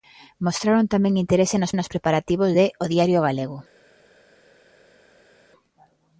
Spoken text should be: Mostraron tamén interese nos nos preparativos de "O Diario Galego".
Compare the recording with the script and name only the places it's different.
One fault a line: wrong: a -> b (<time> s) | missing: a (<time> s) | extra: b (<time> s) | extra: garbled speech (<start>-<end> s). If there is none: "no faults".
no faults